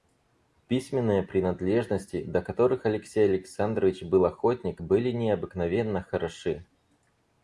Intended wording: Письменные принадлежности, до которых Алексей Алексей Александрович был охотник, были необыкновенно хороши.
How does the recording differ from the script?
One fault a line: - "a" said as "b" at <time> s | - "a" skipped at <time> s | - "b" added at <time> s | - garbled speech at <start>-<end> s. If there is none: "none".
- "Алексей" skipped at 3.2 s